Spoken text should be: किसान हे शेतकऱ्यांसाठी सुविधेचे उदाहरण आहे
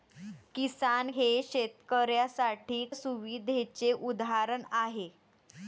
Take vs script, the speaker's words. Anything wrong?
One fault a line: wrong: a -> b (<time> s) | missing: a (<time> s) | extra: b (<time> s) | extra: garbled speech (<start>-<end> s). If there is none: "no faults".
no faults